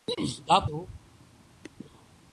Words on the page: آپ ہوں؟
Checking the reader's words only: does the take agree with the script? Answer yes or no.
yes